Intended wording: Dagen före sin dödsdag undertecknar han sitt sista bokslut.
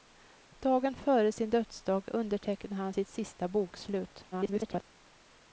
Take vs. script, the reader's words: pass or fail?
fail